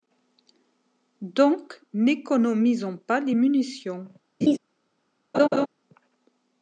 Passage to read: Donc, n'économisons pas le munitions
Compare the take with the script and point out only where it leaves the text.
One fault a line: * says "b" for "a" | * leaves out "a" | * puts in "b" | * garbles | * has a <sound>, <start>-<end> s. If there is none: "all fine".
* says "les" for "le"
* has a laugh, 4.4-4.6 s
* has a laugh, 5.3-5.7 s